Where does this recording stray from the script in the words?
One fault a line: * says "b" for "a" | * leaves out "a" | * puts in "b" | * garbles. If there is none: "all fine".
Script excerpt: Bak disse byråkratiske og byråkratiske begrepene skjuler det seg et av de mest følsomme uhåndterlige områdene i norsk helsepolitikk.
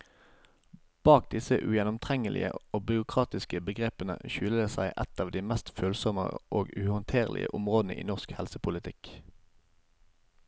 * says "ugjennomtrengelige" for "byråkratiske"
* puts in "og"